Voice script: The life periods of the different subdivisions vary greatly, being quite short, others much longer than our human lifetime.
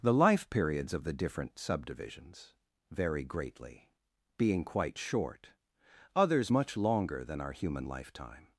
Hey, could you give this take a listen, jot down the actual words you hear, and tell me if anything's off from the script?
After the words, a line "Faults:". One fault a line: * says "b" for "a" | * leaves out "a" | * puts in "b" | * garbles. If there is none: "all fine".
The life periods of the different subdivisions vary greatly, being quite short, others much longer than our human lifetime.
Faults:
all fine